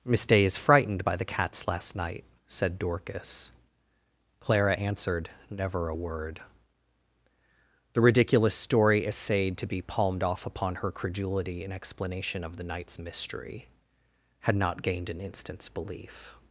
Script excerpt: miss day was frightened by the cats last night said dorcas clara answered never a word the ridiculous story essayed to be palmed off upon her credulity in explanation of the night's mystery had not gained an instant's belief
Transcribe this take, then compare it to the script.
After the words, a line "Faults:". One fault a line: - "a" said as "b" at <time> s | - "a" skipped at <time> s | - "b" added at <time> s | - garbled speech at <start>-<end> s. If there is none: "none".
miss day is frightened by the cats last night said dorcas clara answered never a word the ridiculous story essayed to be palmed off upon her credulity in explanation of the night's mystery had not gained an instant's belief
Faults:
- "was" said as "is" at 0.5 s